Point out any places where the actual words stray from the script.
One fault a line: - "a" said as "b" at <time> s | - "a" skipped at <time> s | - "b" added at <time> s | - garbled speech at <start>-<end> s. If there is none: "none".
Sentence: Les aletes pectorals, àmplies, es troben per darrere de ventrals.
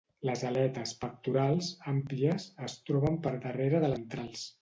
none